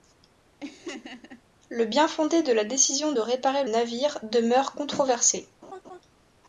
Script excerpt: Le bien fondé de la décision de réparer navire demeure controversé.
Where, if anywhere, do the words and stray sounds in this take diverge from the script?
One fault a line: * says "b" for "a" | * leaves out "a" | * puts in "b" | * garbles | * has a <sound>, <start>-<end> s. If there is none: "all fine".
* has a laugh, 0.6-1.4 s
* has a laugh, 5.6-6.0 s